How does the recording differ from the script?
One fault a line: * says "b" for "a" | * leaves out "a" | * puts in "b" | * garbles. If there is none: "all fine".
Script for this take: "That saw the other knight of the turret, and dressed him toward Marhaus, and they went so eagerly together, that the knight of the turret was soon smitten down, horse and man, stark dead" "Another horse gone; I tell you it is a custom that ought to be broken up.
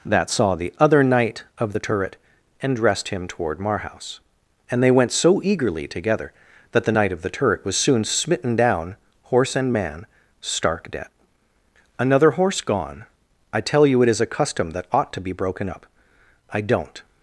* puts in "I don't"